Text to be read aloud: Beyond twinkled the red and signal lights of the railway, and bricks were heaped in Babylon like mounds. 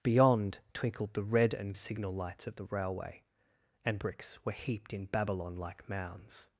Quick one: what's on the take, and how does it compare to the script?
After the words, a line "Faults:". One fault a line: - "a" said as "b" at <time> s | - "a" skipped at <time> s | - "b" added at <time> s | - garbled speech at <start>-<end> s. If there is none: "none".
Beyond twinkled the red and signal lights of the railway, and bricks were heaped in Babylon like mounds.
Faults:
none